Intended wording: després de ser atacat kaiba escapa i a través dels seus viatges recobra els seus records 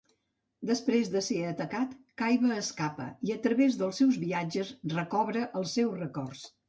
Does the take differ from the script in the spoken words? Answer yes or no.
no